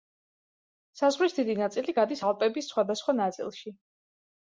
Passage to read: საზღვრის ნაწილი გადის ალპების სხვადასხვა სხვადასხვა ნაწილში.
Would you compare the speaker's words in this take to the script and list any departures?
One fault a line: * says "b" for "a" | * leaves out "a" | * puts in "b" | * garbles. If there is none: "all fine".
* puts in "დიდი"
* leaves out "სხვადასხვა"